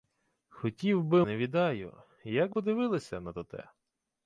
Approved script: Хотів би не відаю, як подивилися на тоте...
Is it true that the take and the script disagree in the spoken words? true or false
false